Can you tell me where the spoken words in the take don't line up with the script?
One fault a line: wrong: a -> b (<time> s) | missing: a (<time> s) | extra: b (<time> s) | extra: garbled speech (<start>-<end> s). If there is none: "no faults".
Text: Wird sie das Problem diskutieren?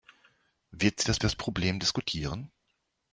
extra: das (1.2 s)